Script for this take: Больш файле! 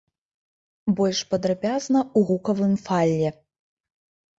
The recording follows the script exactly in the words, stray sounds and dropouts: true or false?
false